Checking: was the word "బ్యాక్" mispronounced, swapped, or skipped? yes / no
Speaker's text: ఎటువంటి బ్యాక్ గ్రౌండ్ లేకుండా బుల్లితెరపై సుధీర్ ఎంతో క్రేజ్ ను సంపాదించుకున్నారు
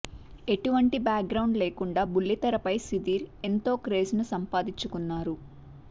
no